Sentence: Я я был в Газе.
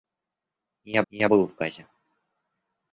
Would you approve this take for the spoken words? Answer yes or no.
yes